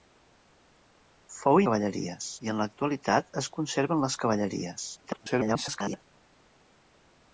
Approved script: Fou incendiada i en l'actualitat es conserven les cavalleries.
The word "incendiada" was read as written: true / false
false